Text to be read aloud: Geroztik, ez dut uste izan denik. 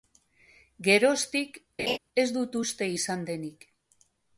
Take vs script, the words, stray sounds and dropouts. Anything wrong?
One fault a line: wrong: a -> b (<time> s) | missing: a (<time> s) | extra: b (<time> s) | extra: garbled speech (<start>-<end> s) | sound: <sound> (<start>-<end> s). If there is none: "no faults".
sound: laugh (1.8-2.0 s)